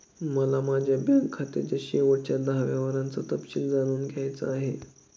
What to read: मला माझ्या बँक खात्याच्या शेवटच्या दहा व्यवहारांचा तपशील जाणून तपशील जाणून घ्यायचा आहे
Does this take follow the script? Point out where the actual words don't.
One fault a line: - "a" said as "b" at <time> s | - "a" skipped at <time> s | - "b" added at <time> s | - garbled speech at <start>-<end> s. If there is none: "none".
- "तपशील जाणून" skipped at 4.1 s